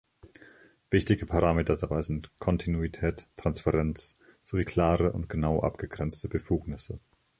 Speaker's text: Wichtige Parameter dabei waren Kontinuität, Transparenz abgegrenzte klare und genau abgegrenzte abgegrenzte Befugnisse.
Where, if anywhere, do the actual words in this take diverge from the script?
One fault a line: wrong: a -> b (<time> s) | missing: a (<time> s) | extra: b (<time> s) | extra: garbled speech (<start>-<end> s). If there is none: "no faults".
wrong: waren -> sind (2.0 s)
wrong: abgegrenzte -> sowie (4.4 s)
missing: abgegrenzte (6.3 s)